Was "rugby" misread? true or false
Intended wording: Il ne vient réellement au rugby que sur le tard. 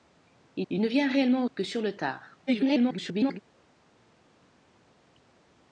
true